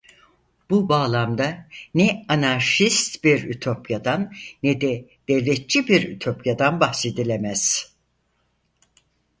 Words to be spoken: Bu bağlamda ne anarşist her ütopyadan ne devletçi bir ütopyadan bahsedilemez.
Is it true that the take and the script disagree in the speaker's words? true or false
true